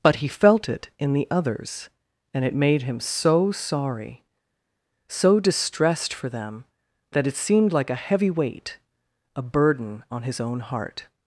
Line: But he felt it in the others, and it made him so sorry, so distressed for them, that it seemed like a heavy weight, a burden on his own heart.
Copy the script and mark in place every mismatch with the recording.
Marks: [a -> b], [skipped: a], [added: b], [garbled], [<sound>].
But he felt it in the others, and it made him so sorry, so distressed for them, that it seemed like a heavy weight, a burden on his own heart.